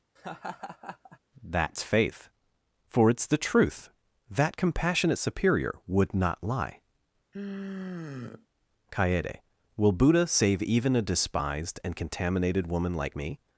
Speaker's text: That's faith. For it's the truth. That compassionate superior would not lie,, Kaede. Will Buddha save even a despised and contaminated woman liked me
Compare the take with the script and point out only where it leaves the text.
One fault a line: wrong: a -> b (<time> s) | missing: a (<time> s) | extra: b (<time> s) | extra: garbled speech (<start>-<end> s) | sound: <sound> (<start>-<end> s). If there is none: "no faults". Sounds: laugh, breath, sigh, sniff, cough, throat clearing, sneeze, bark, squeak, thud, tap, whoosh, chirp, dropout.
sound: laugh (0.2-1.2 s)
sound: sigh (7.3-8.5 s)
wrong: liked -> like (12.9 s)